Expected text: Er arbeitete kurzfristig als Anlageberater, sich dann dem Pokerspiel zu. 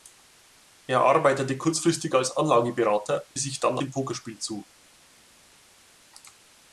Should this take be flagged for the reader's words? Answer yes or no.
no